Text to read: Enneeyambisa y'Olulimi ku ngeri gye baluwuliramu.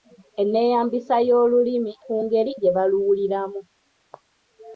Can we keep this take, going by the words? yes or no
yes